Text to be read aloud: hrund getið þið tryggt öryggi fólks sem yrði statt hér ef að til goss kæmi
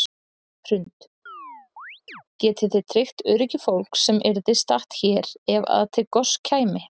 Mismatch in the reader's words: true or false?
false